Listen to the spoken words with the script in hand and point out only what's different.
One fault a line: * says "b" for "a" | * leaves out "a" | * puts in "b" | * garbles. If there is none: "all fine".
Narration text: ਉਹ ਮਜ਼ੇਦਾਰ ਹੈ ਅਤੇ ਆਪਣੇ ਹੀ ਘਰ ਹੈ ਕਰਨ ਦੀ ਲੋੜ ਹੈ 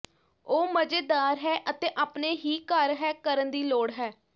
all fine